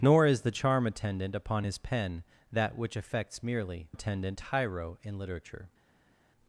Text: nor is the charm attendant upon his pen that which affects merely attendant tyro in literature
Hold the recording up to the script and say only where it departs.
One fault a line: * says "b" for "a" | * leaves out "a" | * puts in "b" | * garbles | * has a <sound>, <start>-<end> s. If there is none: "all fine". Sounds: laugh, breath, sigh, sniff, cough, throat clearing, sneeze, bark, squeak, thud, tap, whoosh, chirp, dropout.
all fine